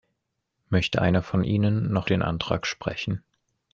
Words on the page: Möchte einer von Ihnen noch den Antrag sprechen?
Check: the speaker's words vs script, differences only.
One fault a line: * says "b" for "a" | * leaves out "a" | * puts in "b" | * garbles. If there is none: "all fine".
all fine